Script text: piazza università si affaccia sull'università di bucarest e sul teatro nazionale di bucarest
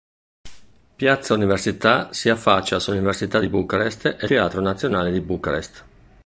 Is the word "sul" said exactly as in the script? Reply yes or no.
no